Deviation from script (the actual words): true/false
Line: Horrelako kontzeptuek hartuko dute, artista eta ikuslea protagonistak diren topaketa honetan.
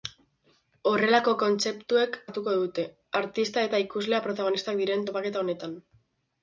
false